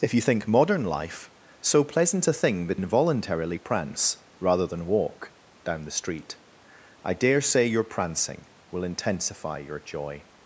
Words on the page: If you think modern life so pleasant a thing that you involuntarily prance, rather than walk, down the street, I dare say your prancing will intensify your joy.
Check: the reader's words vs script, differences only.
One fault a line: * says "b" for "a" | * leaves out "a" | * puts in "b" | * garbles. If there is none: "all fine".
* leaves out "you"